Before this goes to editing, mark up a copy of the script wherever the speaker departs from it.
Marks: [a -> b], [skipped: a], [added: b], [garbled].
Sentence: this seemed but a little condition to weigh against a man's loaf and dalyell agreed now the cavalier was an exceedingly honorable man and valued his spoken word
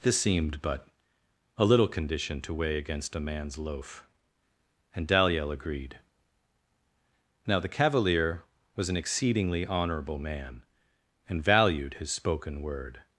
this seemed but a little condition to weigh against a man's loaf and dalyell agreed now the cavalier was an exceedingly honorable man and valued his spoken word